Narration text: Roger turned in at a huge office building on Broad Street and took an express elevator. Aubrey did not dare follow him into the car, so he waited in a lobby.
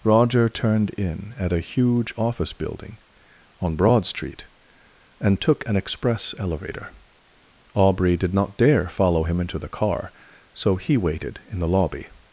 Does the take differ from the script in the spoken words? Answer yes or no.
yes